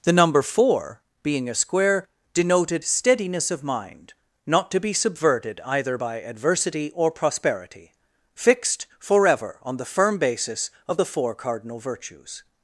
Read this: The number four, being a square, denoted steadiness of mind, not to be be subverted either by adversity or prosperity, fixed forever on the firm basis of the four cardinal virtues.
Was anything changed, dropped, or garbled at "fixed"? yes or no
no